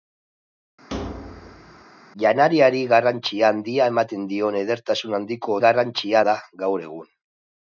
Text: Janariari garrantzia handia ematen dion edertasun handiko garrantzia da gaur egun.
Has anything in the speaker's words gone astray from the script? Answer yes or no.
no